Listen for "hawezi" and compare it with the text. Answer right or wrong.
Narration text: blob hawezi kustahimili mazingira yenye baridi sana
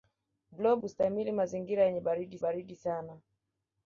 wrong